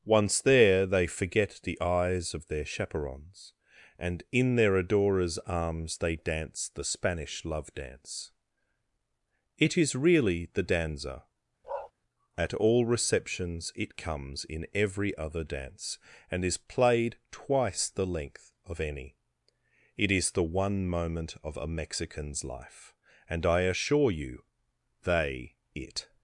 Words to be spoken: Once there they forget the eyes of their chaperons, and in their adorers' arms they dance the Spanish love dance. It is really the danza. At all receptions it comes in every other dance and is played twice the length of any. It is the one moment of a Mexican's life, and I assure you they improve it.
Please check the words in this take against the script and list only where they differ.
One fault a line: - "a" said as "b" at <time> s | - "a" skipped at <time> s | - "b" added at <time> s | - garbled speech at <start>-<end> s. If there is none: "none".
- "improve" skipped at 25.6 s